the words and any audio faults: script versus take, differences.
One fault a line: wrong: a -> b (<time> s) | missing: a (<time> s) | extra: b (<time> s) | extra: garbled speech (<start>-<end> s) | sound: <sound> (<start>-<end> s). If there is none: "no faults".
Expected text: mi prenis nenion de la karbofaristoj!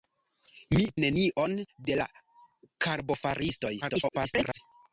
missing: prenis (0.8 s)
extra: garbled speech (3.8-4.6 s)